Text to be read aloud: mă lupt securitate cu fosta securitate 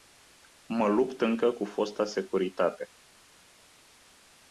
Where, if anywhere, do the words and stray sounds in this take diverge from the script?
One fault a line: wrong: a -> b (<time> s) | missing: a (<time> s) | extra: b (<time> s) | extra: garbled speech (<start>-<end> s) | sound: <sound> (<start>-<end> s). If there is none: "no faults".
wrong: securitate -> încă (1.2 s)